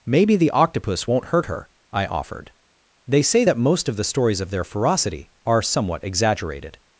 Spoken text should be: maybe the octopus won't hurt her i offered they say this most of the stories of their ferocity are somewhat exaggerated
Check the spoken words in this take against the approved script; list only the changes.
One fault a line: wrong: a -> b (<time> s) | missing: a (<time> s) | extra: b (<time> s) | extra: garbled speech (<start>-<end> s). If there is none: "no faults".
wrong: this -> that (3.4 s)